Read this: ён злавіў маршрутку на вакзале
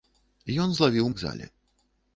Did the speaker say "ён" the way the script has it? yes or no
yes